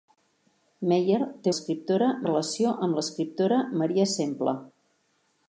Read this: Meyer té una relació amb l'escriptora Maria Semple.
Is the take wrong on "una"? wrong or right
wrong